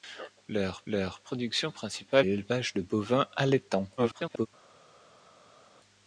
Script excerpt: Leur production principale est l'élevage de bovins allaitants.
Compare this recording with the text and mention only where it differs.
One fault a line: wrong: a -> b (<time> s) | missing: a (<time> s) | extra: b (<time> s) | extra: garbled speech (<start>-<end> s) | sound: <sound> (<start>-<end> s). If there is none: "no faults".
extra: leur (0.9 s)
missing: est (2.3 s)
extra: garbled speech (4.0-4.5 s)